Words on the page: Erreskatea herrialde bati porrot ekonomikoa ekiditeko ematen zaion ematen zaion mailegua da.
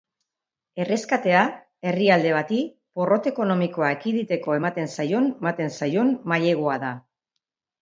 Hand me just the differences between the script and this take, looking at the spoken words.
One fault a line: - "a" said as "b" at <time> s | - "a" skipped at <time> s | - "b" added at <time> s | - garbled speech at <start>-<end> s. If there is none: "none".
none